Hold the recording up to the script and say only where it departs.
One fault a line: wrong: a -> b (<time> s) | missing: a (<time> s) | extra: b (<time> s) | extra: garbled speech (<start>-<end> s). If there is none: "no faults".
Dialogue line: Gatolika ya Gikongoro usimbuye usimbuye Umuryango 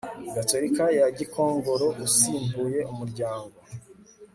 missing: usimbuye (2.8 s)